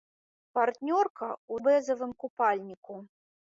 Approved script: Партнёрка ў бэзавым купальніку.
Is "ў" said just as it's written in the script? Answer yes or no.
yes